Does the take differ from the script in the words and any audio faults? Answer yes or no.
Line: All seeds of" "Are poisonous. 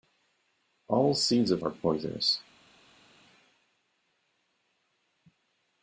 no